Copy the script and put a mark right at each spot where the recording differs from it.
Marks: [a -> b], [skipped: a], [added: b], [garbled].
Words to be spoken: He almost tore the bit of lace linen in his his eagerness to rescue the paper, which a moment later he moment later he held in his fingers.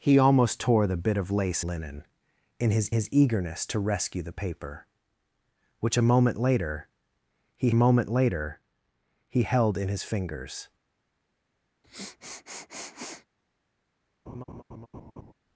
He almost tore the bit of lace linen in his his eagerness to rescue the paper, which a moment later he moment later he held in his fingers.